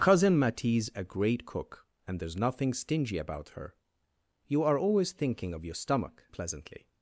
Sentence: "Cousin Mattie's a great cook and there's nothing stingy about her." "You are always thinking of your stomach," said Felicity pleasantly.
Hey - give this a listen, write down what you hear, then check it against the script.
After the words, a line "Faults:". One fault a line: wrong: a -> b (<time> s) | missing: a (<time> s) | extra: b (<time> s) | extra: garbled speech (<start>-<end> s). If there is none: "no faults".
"Cousin Mattie's a great cook and there's nothing stingy about her." "You are always thinking of your stomach," pleasantly.
Faults:
missing: said Felicity (6.2 s)